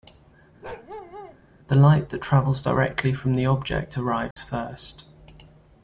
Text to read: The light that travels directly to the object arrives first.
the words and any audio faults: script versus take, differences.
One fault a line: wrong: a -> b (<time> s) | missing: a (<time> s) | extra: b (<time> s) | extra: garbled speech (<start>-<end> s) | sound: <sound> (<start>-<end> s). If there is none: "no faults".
sound: bark (0.6-1.4 s)
wrong: to -> from (3.1 s)
sound: dropout (4.3-4.4 s)